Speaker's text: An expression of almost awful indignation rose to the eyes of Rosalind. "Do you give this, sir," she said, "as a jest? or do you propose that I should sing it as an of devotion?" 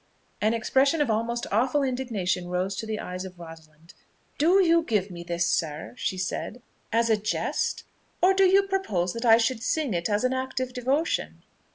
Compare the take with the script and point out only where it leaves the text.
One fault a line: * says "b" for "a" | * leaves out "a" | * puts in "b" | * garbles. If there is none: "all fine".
* puts in "me"
* puts in "act"